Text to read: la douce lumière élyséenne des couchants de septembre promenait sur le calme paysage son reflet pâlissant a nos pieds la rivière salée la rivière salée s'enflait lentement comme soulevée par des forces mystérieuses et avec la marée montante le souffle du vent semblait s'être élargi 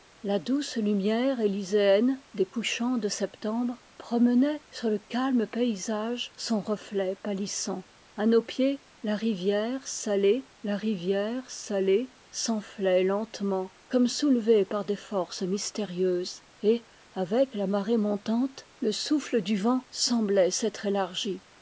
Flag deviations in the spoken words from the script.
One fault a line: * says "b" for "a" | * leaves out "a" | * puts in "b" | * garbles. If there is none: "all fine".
all fine